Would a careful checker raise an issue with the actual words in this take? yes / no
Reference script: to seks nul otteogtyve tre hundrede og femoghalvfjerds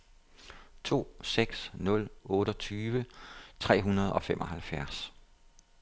no